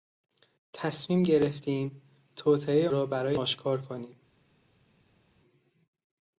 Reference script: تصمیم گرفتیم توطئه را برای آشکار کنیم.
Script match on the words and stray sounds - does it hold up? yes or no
yes